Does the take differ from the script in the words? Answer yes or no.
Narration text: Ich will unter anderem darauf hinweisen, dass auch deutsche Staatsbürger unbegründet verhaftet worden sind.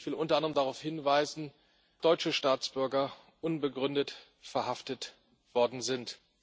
yes